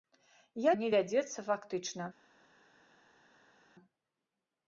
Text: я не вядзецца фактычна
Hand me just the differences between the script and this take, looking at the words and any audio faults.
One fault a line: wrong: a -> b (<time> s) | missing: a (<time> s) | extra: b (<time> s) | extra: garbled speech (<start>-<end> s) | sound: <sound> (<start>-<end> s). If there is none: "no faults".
no faults